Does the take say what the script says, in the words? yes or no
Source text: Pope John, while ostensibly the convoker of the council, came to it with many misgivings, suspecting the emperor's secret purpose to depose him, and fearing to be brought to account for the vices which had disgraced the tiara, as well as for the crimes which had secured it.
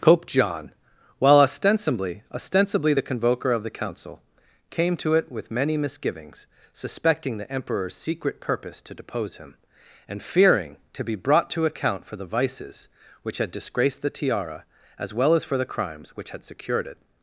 no